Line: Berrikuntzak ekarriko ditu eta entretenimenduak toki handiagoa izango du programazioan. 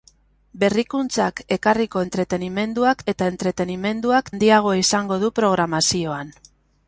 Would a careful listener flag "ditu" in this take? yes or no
yes